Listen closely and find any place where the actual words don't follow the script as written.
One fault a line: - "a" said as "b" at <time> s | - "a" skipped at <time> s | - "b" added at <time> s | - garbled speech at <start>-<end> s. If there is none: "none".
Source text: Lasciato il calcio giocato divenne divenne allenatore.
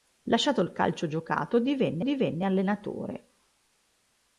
none